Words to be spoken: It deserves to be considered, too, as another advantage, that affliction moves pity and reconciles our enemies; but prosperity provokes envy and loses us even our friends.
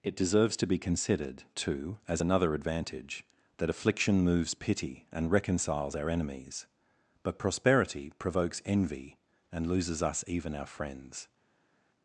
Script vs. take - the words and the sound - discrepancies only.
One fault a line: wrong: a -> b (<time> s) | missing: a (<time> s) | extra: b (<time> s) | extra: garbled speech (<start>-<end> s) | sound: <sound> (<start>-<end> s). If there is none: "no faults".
no faults